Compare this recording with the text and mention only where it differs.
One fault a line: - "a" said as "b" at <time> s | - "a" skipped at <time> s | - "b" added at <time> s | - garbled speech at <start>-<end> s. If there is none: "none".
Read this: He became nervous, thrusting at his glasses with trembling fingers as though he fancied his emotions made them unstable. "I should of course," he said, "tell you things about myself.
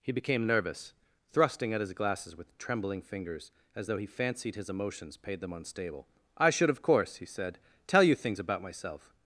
- "made" said as "paid" at 5.2 s